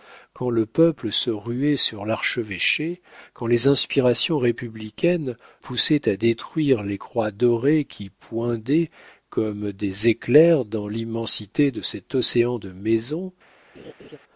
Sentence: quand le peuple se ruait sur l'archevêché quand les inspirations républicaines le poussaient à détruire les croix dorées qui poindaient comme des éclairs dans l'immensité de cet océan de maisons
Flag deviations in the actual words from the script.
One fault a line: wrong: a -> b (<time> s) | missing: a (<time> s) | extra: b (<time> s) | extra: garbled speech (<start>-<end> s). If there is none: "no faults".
missing: le (5.4 s)